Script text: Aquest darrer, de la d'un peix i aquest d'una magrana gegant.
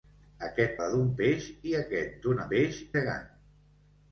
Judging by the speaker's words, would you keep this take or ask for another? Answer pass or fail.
fail